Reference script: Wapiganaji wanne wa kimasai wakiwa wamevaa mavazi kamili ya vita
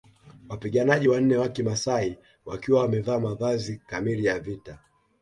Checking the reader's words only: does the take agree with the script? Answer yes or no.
yes